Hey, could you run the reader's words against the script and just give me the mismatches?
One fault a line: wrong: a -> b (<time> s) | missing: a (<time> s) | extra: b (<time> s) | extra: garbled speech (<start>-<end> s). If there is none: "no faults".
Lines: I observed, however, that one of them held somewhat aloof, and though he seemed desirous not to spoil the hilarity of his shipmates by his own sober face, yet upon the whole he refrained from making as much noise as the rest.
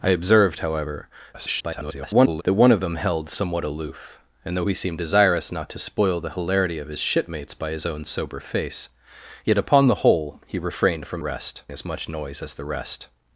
extra: garbled speech (1.3-2.4 s)
wrong: making -> rest (11.2 s)